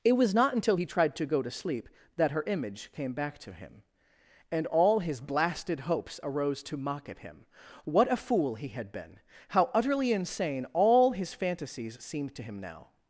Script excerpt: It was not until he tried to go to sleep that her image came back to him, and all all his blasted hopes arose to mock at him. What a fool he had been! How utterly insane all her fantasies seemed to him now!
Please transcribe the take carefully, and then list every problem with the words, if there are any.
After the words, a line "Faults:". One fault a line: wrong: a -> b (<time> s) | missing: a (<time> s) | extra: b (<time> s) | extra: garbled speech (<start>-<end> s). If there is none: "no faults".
It was not until he tried to go to sleep that her image came back to him, and all his blasted hopes arose to mock at him. What a fool he had been! How utterly insane all his fantasies seemed to him now!
Faults:
missing: all (5.0 s)
wrong: her -> his (11.1 s)